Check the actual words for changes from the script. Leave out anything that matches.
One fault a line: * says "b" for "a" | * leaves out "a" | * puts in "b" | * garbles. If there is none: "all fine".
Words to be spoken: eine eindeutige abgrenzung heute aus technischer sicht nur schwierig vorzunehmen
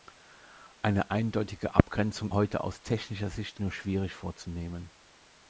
all fine